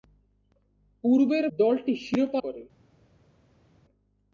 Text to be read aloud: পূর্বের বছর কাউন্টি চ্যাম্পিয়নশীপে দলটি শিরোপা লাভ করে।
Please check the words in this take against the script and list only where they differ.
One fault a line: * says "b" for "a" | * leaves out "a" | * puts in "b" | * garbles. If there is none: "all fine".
* leaves out "বছর কাউন্টি চ্যাম্পিয়নশীপে"
* leaves out "লাভ"